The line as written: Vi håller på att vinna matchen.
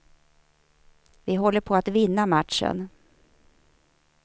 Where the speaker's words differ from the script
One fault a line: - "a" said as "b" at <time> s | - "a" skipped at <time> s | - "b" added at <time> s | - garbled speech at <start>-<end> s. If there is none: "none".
none